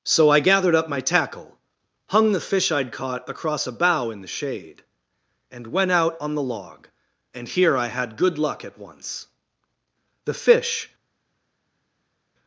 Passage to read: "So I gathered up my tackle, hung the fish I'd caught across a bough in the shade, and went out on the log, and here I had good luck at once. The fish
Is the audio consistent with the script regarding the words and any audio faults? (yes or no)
yes